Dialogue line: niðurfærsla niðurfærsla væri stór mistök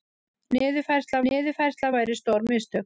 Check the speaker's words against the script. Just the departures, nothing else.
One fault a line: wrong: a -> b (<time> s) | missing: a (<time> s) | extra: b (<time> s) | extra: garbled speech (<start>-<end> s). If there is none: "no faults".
no faults